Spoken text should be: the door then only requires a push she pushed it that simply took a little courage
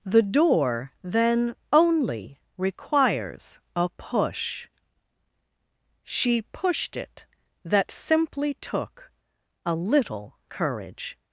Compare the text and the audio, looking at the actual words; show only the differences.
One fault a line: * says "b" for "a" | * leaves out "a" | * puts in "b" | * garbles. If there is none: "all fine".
all fine